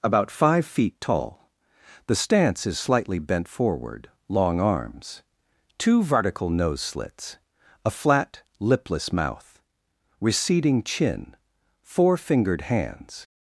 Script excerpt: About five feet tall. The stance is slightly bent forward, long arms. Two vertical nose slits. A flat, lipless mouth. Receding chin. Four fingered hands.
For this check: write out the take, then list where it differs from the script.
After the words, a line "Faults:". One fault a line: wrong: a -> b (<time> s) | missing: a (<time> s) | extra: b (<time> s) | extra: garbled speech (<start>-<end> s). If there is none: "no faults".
About five feet tall. The stance is slightly bent forward, long arms. Two vertical nose slits. A flat, lipless mouth. Receding chin. Four fingered hands.
Faults:
no faults